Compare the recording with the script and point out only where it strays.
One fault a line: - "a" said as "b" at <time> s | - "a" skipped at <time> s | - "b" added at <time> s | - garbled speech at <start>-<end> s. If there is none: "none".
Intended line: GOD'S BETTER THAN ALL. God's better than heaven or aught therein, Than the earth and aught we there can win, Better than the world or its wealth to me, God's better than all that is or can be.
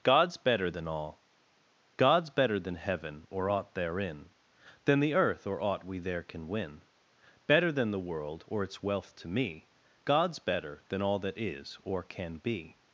- "and" said as "or" at 5.5 s